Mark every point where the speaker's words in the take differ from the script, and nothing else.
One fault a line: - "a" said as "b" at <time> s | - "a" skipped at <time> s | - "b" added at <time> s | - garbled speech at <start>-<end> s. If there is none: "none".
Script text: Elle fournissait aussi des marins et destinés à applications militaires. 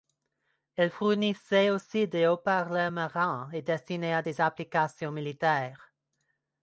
- "haut parleurs" added at 2.3 s
- "des" added at 4.2 s